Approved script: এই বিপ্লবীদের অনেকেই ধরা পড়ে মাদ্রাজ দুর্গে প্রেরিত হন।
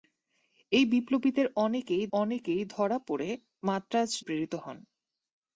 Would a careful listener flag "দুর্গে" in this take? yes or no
yes